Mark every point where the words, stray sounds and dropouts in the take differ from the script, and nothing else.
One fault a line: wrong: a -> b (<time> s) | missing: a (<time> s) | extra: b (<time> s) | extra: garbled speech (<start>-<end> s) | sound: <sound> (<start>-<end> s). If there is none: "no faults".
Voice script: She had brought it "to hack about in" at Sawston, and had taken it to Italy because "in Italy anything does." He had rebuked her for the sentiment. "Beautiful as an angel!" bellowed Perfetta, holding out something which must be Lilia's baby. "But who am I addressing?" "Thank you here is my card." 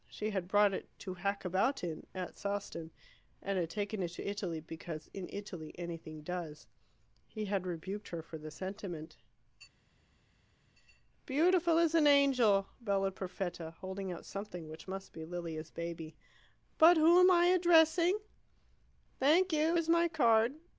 missing: here (19.8 s)